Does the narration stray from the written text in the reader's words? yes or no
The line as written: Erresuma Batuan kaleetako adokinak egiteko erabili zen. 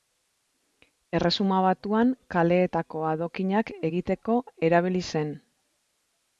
no